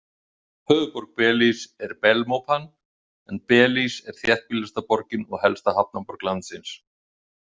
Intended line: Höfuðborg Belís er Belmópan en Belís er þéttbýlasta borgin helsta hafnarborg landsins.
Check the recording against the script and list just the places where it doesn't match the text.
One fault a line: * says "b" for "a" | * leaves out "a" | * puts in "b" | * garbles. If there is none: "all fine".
* puts in "og"